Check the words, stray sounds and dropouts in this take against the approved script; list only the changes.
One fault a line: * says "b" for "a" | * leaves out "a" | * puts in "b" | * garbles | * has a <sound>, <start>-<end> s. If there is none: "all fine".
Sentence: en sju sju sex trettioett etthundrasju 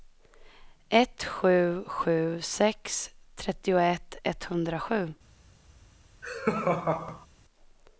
* says "ett" for "en"
* has a laugh, 6.2-7.3 s